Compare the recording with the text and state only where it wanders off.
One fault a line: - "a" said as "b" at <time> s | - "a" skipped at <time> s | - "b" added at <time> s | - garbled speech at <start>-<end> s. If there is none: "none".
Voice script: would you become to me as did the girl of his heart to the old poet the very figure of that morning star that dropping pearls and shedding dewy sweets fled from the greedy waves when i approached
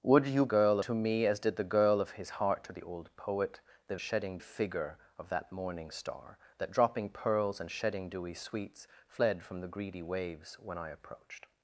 - "become" said as "girl" at 0.5 s
- "very" said as "shedding" at 4.0 s